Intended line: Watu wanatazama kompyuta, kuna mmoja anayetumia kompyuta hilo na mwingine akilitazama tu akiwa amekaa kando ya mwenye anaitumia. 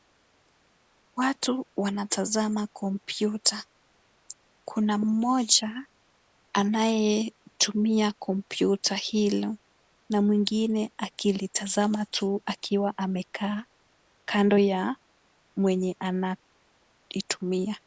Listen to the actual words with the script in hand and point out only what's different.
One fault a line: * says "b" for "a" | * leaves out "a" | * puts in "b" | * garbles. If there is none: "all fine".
all fine